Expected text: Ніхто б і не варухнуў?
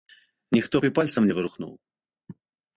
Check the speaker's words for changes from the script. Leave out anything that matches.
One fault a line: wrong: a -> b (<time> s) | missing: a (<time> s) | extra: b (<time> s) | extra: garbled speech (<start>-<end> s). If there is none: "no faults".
extra: пальцам (1.0 s)